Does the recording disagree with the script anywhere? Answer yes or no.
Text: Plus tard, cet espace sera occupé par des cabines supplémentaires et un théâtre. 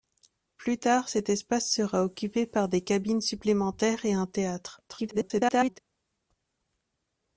yes